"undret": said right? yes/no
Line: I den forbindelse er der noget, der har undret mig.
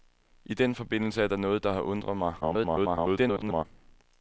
yes